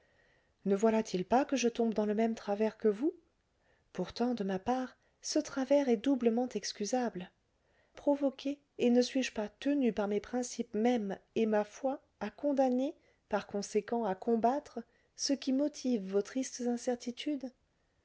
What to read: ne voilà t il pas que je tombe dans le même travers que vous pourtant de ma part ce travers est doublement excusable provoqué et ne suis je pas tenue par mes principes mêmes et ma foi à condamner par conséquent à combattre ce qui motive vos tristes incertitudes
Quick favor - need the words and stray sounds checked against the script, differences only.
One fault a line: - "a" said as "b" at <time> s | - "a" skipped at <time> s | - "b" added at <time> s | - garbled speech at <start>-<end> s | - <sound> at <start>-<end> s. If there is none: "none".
none